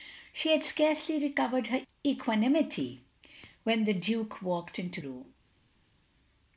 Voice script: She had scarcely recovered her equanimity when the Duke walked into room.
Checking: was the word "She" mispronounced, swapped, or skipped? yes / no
no